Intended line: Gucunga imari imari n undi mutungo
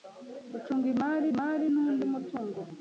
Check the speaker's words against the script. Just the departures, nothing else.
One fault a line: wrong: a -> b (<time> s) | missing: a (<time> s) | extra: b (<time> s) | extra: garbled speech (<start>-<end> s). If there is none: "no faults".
no faults